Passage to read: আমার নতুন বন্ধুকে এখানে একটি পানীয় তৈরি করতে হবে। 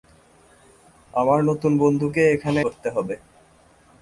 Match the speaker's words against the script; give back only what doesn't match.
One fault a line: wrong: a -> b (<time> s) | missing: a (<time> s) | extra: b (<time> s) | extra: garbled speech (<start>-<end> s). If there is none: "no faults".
missing: একটি পানীয় তৈরি (2.6 s)